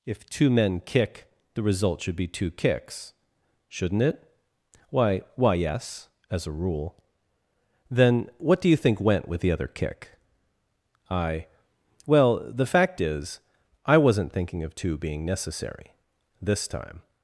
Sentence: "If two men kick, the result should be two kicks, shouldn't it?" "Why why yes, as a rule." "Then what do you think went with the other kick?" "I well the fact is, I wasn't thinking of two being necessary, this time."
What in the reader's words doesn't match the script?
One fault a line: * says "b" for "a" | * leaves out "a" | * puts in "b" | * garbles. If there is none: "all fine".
all fine